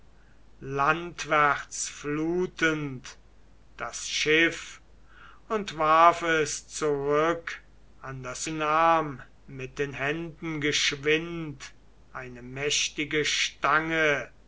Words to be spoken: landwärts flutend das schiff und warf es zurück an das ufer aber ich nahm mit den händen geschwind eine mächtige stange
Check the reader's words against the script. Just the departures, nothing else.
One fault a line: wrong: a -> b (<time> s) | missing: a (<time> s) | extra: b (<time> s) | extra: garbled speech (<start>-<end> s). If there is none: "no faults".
missing: ufer aber ich (8.5 s)